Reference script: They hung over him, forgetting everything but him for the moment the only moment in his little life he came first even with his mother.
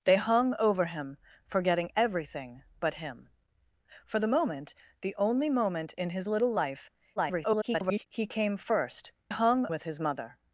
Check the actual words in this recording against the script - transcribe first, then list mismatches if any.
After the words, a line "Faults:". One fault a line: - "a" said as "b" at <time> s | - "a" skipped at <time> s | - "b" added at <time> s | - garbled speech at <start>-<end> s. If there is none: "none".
They hung over him, forgetting everything but him for the moment the only moment in his little life [garbled] he came first hung with his mother.
Faults:
- garbled speech at 7.2-8.1 s
- "even" said as "hung" at 9.3 s